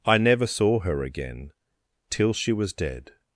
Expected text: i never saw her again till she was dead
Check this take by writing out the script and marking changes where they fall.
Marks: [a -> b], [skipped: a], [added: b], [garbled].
i never saw her again till she was dead